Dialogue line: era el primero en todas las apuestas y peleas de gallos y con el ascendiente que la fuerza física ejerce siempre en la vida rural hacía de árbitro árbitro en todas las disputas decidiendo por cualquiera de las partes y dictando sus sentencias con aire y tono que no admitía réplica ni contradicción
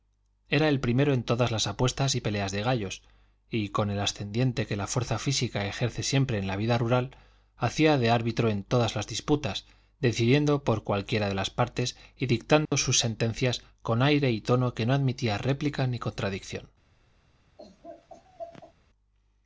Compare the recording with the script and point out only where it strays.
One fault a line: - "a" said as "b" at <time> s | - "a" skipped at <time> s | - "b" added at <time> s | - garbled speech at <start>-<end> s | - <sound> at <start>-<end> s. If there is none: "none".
- "árbitro" skipped at 8.5 s
- dropout at 12.7-12.7 s
- laugh at 17.6-18.7 s